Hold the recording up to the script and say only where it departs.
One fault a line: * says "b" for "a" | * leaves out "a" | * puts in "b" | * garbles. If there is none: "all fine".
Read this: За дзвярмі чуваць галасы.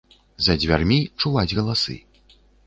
all fine